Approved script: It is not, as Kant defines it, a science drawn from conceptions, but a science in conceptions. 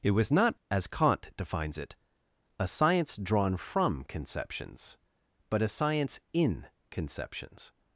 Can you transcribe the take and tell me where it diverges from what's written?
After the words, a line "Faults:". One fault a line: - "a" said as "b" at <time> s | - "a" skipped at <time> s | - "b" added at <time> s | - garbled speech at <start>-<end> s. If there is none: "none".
It was not, as Kant defines it, a science drawn from conceptions, but a science in conceptions.
Faults:
- "is" said as "was" at 0.1 s